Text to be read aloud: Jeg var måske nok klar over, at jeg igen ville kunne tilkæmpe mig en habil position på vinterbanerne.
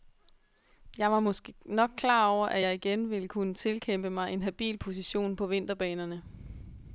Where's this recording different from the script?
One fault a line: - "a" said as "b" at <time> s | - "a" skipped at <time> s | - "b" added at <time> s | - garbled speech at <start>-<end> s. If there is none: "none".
none